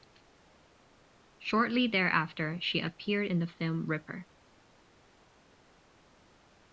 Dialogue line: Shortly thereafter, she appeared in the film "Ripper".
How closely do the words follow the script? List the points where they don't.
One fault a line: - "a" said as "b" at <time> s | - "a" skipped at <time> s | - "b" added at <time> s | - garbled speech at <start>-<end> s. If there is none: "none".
none